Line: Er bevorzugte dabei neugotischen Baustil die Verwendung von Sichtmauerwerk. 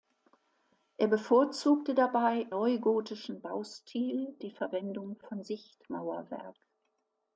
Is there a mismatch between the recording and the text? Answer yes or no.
no